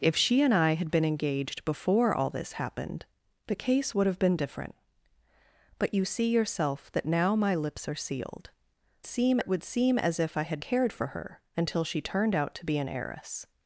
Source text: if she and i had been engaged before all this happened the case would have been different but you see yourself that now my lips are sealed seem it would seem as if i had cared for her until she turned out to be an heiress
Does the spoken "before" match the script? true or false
true